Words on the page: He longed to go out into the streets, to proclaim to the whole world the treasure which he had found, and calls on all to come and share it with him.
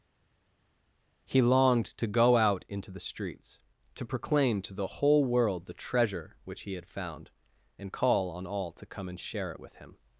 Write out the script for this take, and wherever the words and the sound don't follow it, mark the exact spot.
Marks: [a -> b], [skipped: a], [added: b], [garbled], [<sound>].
He longed to go out into the streets, to proclaim to the whole world the treasure which he had found, and [calls -> call] on all to come and share it with him.